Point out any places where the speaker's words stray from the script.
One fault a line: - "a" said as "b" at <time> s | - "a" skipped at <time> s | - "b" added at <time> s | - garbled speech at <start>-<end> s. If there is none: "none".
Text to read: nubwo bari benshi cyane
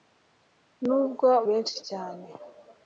- "bari" skipped at 1.3 s